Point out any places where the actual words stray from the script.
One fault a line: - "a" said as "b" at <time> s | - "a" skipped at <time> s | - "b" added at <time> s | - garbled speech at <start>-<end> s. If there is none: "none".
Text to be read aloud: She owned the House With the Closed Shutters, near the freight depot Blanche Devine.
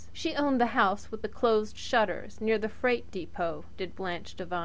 - "did" added at 3.8 s